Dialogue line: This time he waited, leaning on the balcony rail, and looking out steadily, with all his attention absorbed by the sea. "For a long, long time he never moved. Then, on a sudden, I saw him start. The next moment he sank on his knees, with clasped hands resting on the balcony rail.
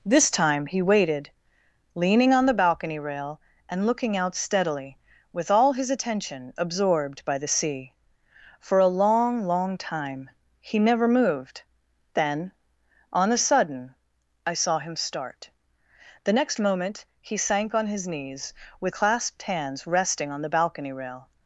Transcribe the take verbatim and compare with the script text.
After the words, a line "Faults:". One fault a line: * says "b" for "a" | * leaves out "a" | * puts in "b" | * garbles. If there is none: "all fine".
This time he waited, leaning on the balcony rail, and looking out steadily, with all his attention absorbed by the sea. "For a long, long time he never moved. Then, on a sudden, I saw him start. The next moment he sank on his knees, with clasped hands resting on the balcony rail.
Faults:
all fine